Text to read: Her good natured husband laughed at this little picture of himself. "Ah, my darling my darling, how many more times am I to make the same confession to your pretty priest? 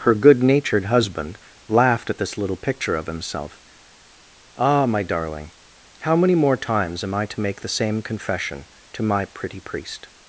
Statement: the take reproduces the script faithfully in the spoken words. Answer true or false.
false